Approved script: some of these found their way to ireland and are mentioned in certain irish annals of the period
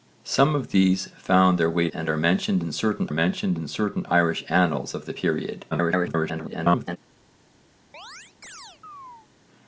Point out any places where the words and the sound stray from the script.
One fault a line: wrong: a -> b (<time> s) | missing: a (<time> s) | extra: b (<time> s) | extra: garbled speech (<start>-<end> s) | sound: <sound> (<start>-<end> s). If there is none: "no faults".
wrong: to ireland and are -> and are mentioned in certain (1.9 s)
extra: garbled speech (5.7-7.0 s)
sound: chirp (7.9-9.3 s)